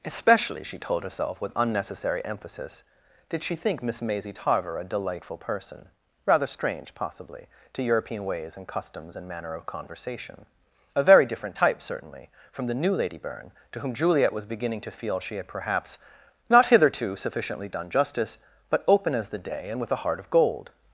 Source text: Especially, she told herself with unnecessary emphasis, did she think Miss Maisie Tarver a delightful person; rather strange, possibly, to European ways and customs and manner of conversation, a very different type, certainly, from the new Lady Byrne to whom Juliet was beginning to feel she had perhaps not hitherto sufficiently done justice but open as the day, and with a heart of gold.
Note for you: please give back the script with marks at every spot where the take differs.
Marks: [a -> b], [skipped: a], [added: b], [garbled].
Especially, she told herself with unnecessary emphasis, did she think Miss Maisie Tarver a delightful person; rather strange, possibly, to European ways and customs and manner of conversation, a very different type, certainly, from the new Lady Byrne to whom Juliet was beginning to feel she had perhaps not hitherto sufficiently done justice but open as the day, and with a heart of gold.